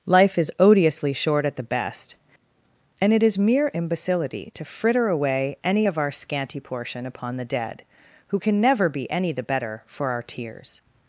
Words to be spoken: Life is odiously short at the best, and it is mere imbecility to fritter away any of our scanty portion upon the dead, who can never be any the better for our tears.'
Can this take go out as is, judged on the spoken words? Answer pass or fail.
pass